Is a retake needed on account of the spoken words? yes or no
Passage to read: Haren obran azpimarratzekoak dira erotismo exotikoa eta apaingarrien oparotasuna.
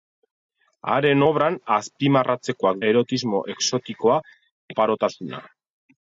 yes